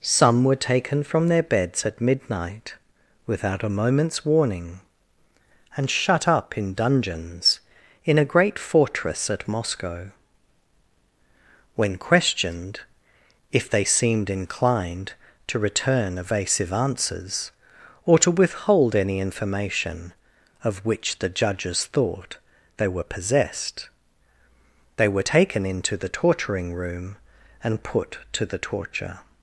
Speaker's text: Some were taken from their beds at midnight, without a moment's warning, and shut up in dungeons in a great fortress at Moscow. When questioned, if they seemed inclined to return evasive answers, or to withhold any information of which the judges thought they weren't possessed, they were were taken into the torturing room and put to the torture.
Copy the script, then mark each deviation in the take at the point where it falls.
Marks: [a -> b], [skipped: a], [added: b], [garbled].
Some were taken from their beds at midnight, without a moment's warning, and shut up in dungeons in a great fortress at Moscow. When questioned, if they seemed inclined to return evasive answers, or to withhold any information of which the judges thought they [weren't -> were] possessed, they were [skipped: were] taken into the torturing room and put to the torture.